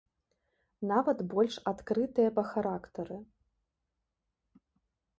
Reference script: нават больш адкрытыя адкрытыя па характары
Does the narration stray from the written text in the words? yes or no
yes